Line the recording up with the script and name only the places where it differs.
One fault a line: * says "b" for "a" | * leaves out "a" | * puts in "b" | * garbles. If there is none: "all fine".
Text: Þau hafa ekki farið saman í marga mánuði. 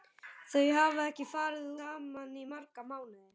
all fine